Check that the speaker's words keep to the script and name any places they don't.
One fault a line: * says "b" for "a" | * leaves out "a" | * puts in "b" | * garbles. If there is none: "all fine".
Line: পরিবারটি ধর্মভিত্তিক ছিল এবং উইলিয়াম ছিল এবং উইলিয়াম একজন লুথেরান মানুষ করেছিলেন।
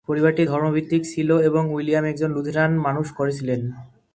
* leaves out "ছিল এবং উইলিয়াম"